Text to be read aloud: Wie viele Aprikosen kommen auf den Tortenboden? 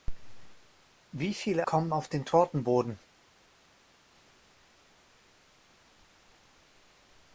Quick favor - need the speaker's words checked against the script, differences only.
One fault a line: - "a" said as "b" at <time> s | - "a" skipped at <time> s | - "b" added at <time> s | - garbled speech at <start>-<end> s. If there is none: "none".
- "Aprikosen" skipped at 1.7 s